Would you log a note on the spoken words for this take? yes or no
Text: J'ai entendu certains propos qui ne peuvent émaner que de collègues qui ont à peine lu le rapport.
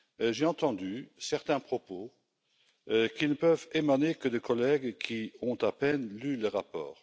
no